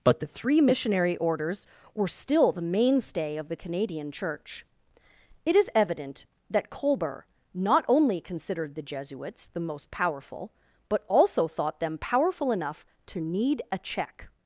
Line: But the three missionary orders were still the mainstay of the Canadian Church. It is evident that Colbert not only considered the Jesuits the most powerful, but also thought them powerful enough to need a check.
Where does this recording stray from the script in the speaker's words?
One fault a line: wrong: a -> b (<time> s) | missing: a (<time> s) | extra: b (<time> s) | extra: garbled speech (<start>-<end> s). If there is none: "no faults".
no faults